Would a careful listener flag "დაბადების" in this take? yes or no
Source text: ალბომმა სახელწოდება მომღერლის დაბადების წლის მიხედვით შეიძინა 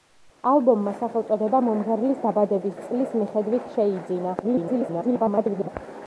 no